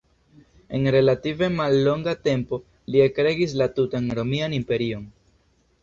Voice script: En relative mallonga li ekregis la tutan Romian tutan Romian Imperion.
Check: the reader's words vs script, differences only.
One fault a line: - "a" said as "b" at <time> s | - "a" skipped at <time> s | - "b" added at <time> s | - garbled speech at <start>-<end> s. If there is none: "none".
- "tempo" added at 2.3 s
- "tutan Romian" skipped at 4.6 s